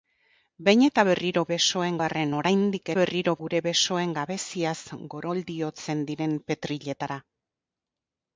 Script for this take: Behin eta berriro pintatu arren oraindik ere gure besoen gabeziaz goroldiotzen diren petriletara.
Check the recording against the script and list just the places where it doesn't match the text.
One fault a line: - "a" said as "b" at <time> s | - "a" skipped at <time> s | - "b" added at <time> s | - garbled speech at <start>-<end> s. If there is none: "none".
- "pintatu" said as "besoen" at 1.5 s
- "ere" said as "berriro" at 3.0 s